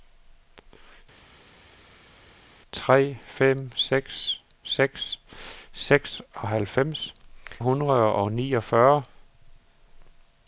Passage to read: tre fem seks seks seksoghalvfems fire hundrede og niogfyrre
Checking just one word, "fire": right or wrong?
wrong